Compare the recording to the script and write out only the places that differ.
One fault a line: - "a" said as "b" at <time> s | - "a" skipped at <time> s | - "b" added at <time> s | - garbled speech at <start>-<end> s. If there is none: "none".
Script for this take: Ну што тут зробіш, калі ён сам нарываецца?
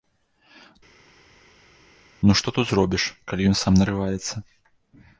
none